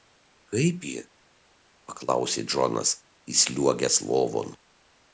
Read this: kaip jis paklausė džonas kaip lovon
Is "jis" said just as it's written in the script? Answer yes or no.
no